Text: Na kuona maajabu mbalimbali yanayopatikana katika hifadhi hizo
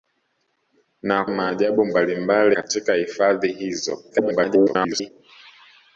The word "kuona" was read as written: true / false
false